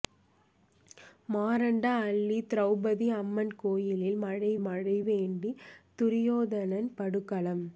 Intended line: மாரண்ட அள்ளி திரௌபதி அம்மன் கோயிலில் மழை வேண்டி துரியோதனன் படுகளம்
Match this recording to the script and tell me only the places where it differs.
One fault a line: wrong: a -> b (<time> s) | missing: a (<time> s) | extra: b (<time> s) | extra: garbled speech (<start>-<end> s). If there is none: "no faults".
extra: மழை (4.6 s)